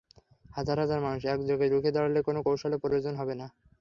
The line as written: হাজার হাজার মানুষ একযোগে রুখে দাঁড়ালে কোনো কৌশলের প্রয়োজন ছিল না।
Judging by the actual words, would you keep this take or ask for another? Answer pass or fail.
fail